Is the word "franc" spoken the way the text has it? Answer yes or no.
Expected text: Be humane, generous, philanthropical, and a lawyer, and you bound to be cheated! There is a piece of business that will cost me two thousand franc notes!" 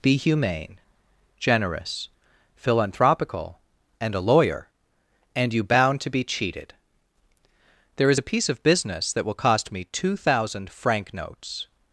yes